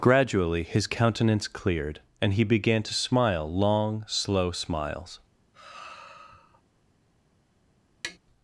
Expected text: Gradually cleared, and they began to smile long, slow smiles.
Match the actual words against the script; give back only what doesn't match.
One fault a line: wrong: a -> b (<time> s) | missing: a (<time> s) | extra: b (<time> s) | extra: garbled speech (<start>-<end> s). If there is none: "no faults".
extra: his countenance (0.6 s)
wrong: they -> he (2.3 s)